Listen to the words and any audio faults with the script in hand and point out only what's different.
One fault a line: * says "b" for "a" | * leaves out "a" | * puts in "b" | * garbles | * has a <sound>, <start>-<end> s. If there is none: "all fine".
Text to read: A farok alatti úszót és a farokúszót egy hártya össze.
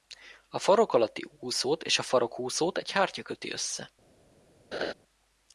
* puts in "köti"
* has a laugh, 4.7-4.9 s